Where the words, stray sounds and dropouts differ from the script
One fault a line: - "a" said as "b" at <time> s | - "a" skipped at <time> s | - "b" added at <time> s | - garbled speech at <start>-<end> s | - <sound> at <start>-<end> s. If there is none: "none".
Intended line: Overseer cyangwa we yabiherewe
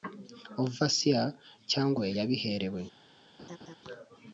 - laugh at 3.4-3.8 s